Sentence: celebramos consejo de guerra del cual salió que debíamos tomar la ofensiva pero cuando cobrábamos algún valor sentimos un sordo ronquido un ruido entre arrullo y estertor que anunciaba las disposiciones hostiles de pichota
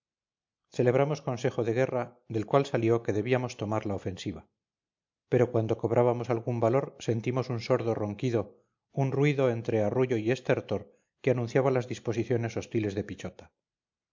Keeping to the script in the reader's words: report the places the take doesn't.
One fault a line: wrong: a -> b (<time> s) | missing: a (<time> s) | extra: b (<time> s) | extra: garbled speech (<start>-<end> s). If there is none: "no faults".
no faults